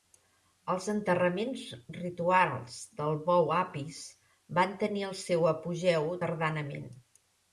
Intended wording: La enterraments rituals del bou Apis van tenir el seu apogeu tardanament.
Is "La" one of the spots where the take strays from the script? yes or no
yes